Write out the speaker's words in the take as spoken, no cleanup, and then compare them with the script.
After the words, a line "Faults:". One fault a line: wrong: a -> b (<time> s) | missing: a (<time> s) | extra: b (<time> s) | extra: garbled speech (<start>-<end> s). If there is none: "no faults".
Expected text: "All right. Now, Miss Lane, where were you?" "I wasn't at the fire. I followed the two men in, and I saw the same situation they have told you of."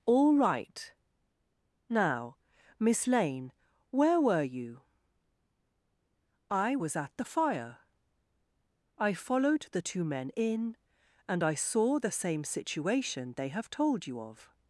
"All right. Now, Miss Lane, where were you?" "I was at the fire. I followed the two men in, and I saw the same situation they have told you of."
Faults:
wrong: wasn't -> was (6.7 s)